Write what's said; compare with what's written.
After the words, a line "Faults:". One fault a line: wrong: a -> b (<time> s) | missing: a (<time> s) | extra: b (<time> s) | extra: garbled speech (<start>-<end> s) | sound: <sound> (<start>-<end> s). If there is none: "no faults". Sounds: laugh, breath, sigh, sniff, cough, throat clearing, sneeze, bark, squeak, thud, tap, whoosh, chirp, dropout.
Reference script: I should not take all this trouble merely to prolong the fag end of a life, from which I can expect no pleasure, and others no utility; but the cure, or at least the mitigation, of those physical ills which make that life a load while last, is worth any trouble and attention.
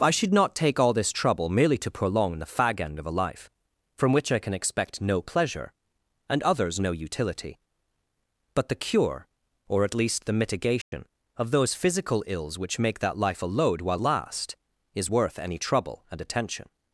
I should not take all this trouble merely to prolong the fag end of a life, from which I can expect no pleasure, and others no utility; but the cure, or at least the mitigation, of those physical ills which make that life a load while last, is worth any trouble and attention.
Faults:
sound: dropout (10.8-10.9 s)